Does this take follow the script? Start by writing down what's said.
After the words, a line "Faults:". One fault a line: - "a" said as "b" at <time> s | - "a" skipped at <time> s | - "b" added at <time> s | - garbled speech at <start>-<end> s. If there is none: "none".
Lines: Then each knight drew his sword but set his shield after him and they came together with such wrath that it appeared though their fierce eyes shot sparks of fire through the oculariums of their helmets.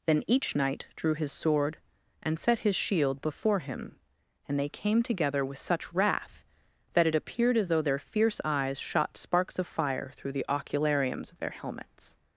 Then each knight drew his sword and set his shield before him and they came together with such wrath that it appeared as though their fierce eyes shot sparks of fire through the oculariums of their helmets.
Faults:
- "but" said as "and" at 2.2 s
- "after" said as "before" at 3.2 s
- "as" added at 7.5 s